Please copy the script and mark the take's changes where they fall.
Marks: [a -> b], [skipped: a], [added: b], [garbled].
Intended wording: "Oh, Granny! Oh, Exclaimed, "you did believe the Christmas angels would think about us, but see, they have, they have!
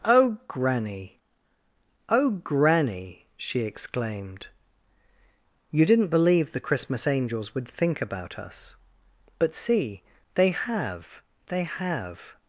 "Oh, Granny! Oh, [added: Granny she] Exclaimed, "you [did -> didn't] believe the Christmas angels would think about us, but see, they have, they have!